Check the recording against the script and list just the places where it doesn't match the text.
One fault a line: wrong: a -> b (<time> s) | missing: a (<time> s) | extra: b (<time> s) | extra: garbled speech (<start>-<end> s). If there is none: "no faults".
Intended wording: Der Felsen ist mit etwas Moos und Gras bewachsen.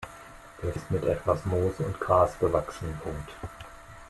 missing: Felsen (0.7 s)